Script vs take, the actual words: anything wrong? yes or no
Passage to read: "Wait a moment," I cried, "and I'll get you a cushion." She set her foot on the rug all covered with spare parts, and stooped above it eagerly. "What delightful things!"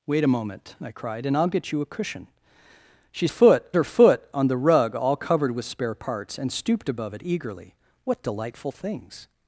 yes